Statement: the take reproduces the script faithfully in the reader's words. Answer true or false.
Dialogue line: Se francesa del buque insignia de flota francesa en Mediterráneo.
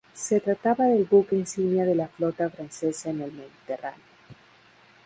false